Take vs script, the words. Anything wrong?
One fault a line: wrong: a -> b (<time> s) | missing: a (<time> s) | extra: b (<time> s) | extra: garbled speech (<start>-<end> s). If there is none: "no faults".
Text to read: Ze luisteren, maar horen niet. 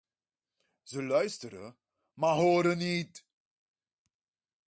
no faults